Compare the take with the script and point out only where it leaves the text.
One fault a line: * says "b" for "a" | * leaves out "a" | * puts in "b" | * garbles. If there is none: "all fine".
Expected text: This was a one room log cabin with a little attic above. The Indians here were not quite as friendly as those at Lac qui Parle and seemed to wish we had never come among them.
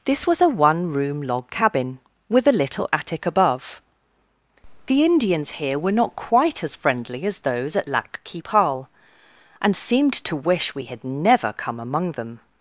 all fine